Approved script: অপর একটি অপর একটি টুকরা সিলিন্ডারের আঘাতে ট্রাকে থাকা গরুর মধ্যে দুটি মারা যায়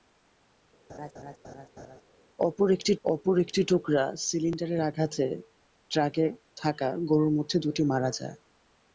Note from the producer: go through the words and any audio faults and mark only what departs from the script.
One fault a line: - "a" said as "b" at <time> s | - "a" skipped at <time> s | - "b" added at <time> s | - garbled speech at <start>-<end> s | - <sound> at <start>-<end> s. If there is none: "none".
- laugh at 0.9-2.0 s